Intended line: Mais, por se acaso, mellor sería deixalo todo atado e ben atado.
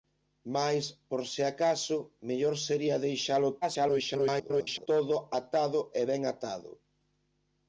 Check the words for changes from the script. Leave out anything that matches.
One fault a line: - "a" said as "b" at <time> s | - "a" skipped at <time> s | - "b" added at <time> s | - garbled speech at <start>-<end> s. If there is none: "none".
- garbled speech at 3.6-4.9 s